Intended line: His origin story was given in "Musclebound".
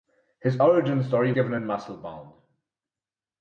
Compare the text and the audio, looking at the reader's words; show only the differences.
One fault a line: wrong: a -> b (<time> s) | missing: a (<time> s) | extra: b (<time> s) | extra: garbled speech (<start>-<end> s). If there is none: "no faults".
missing: was (1.3 s)